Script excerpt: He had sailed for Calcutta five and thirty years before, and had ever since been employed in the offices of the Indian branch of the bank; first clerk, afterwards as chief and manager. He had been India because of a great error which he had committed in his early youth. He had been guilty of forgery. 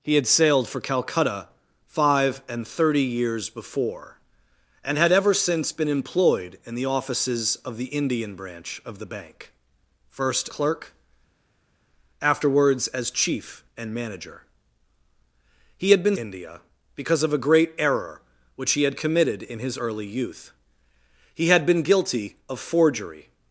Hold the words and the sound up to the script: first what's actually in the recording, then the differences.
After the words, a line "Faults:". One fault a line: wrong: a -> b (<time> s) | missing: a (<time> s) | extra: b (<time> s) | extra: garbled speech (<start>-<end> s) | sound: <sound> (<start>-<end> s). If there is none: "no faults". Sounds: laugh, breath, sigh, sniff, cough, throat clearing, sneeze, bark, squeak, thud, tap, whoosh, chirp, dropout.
He had sailed for Calcutta five and thirty years before, and had ever since been employed in the offices of the Indian branch of the bank; first clerk, afterwards as chief and manager. He had been India because of a great error which he had committed in his early youth. He had been guilty of forgery.
Faults:
no faults